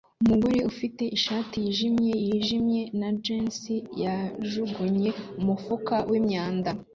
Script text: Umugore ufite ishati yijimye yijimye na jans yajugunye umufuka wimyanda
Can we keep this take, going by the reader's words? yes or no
yes